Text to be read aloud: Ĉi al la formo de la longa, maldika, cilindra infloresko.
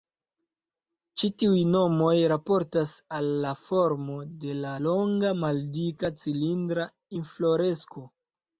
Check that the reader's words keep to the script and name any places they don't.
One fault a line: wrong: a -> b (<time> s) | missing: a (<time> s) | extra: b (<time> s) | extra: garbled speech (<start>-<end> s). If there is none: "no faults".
extra: tiuj nomoj raportas (1.4 s)